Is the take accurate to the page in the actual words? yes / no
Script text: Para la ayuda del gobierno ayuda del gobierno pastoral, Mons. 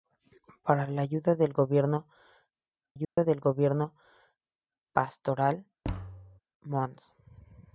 yes